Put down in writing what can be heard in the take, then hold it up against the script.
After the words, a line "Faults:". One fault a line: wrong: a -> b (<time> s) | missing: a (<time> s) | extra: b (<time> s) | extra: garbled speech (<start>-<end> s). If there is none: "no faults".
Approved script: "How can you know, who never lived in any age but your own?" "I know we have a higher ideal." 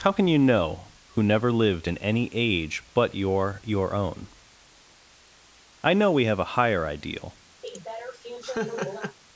"How can you know, who never lived in any age but your your own?" "I know we have a higher ideal."
Faults:
extra: your (3.6 s)